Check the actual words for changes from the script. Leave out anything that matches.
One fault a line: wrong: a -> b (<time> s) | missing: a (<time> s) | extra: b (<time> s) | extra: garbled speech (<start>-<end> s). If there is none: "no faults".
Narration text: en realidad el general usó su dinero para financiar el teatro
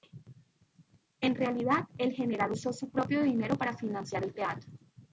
extra: propio (2.9 s)